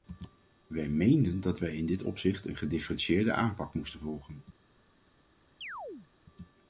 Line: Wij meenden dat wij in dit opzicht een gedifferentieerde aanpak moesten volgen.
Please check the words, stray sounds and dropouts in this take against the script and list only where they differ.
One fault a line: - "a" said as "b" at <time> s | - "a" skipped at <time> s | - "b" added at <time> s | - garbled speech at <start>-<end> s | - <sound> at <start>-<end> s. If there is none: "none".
- chirp at 5.6-6.1 s